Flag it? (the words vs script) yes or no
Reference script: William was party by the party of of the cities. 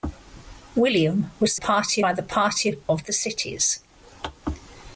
no